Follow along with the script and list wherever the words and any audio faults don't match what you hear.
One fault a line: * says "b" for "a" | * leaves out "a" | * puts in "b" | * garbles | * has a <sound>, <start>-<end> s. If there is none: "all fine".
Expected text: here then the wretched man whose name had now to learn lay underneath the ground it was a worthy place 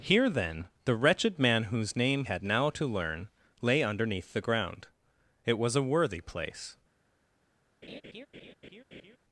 * has a laugh, 7.8-9.2 s